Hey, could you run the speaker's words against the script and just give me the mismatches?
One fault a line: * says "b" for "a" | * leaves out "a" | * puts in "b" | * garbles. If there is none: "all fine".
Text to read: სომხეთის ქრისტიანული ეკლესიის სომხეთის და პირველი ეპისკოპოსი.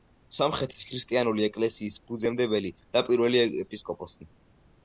* says "ფუძემდებელი" for "სომხეთის"